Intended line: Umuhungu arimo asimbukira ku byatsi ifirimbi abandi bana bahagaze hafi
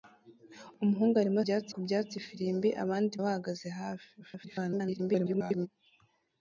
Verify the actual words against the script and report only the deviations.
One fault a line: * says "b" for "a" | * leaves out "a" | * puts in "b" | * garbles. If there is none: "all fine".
* says "byatsi" for "asimbukira"
* leaves out "bana"
* garbles